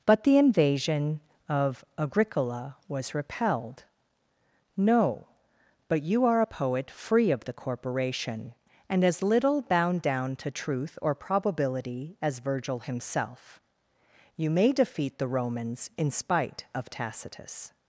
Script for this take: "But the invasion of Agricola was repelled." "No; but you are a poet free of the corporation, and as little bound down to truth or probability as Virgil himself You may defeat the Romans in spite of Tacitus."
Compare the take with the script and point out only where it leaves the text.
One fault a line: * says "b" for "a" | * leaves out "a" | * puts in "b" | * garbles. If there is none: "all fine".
all fine